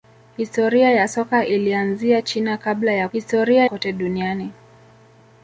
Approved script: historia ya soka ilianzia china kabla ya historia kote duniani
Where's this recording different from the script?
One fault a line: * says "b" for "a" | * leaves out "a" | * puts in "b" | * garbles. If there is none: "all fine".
all fine